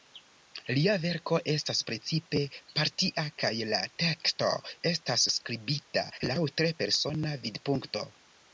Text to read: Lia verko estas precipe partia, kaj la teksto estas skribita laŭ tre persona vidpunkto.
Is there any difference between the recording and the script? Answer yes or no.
no